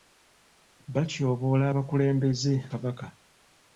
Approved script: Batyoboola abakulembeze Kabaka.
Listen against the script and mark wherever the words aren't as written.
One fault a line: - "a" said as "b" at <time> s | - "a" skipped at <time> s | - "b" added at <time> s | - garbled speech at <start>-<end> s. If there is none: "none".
none